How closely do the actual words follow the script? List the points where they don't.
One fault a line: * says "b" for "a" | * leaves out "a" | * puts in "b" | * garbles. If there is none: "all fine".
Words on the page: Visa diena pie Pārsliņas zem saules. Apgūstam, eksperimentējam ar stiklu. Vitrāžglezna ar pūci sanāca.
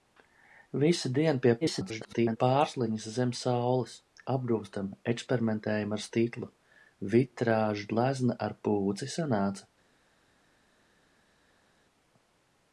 * garbles